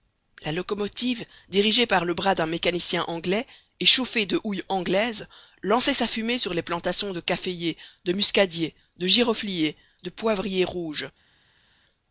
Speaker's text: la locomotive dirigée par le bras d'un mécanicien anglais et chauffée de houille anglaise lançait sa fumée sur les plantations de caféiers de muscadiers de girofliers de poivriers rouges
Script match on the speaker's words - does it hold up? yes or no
yes